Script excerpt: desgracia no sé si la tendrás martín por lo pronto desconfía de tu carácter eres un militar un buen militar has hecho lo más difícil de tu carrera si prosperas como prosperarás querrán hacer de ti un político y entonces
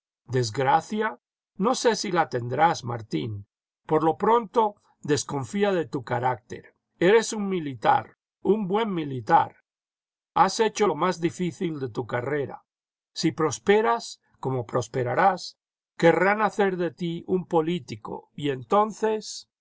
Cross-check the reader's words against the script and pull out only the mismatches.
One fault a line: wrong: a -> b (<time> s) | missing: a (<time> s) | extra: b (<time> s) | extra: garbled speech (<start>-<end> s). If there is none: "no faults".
no faults